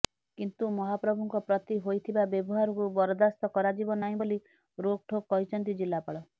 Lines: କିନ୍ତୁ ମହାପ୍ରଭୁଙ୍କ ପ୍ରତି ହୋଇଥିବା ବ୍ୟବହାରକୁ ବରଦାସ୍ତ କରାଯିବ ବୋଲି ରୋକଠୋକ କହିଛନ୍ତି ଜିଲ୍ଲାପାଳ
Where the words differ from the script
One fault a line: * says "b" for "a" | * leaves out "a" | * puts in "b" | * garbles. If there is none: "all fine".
* puts in "ନାହିଁ"